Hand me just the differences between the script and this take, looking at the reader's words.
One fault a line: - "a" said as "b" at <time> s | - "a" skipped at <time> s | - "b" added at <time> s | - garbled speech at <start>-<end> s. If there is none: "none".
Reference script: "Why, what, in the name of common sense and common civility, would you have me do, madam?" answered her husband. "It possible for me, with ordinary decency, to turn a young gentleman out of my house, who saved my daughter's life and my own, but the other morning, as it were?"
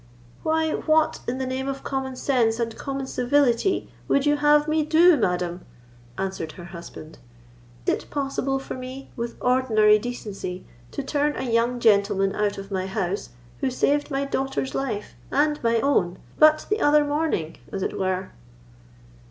none